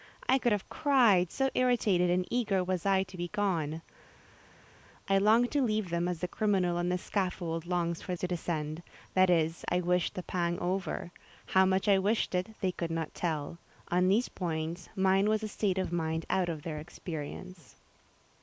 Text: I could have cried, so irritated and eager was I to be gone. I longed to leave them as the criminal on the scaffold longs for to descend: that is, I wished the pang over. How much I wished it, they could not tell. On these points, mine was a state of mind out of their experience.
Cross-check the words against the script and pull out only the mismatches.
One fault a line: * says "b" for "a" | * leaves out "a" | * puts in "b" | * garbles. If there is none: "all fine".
all fine